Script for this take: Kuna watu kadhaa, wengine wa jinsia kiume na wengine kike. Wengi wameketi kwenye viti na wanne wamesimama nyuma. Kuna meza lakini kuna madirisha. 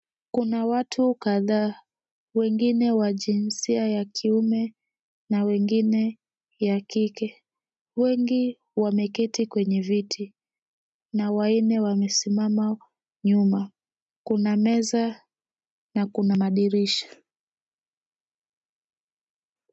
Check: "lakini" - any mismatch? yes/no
yes